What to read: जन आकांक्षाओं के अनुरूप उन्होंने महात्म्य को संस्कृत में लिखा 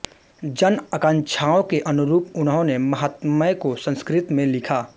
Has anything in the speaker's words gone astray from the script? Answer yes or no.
no